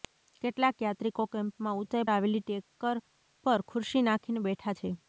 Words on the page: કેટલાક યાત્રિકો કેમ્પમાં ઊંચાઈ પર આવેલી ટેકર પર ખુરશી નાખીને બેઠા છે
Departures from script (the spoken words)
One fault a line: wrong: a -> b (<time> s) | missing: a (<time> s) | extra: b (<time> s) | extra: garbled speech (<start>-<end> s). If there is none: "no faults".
missing: પર (2.1 s)